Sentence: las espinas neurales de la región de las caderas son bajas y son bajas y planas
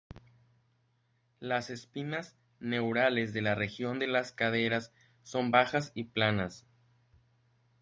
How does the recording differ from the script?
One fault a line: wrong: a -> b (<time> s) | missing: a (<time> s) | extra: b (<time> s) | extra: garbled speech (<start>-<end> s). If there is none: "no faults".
missing: son bajas y (6.0 s)